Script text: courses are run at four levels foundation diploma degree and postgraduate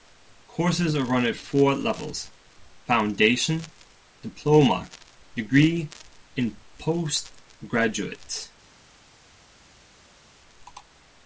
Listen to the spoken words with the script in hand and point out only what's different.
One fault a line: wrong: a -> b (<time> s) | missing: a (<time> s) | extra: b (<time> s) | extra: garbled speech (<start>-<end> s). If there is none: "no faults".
no faults